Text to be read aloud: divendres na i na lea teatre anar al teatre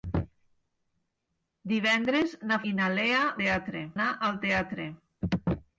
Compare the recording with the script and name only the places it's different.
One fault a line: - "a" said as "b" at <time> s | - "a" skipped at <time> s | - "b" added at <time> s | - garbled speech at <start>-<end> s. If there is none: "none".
none